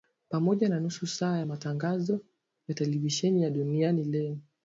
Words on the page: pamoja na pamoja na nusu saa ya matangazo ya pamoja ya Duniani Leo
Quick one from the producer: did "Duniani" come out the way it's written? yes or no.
yes